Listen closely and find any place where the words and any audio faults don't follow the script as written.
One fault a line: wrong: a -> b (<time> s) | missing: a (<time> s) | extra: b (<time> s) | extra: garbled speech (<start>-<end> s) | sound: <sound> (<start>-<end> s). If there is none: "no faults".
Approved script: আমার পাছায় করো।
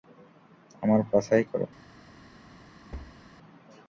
sound: thud (2.9-3.2 s)